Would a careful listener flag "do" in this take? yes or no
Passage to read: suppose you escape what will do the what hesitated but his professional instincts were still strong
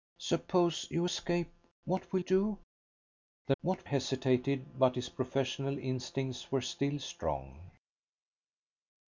no